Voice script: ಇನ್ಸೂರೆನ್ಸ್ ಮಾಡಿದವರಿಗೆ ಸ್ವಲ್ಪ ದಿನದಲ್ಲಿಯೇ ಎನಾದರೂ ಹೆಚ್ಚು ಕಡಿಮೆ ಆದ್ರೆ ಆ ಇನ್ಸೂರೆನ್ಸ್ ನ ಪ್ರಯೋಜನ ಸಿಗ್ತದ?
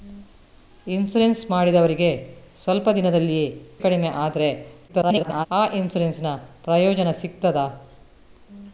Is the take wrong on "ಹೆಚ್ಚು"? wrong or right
wrong